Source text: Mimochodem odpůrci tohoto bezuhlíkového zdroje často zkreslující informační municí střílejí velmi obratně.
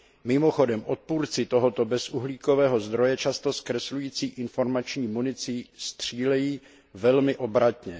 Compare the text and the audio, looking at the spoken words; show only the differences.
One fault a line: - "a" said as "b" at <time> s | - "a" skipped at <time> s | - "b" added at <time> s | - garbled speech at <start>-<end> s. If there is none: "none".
none